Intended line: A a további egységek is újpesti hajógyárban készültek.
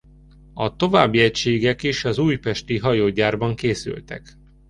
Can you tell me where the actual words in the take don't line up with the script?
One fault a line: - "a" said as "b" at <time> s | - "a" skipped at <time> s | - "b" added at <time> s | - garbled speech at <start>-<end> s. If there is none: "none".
- "a" skipped at 0.8 s
- "az" added at 2.0 s